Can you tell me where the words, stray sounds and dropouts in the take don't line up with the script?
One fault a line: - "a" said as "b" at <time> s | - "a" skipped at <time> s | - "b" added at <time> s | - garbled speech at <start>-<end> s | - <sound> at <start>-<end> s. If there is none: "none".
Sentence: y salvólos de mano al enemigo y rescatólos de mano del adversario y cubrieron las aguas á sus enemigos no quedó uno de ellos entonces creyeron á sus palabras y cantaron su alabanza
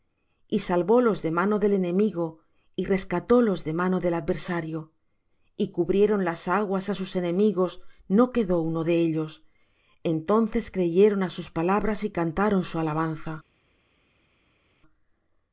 - "al" said as "del" at 1.6 s